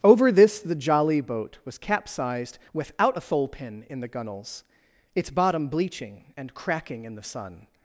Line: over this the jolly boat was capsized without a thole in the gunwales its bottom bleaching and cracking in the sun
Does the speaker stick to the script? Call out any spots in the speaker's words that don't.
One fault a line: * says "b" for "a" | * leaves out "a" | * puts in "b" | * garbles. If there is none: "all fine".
* puts in "pin"